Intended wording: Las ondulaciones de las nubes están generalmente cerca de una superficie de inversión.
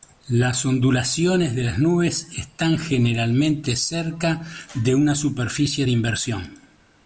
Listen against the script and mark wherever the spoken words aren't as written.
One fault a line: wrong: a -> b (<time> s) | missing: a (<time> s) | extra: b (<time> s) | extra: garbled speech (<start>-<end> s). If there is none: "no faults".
no faults